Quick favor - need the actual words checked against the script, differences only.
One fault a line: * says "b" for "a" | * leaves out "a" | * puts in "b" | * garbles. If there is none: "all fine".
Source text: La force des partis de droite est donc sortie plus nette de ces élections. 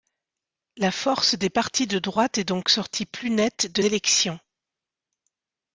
* leaves out "ces"